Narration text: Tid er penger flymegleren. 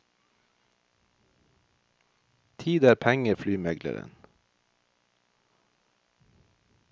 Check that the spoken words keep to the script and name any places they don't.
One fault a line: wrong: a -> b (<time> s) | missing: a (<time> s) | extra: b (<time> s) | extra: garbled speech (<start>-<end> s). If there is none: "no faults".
no faults